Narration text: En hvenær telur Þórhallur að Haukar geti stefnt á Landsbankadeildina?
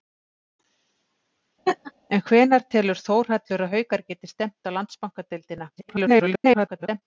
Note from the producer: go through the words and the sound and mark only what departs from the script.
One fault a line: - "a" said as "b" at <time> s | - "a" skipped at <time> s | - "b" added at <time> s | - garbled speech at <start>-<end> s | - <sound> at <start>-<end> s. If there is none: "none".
- laugh at 1.7-1.9 s
- garbled speech at 5.8-7.0 s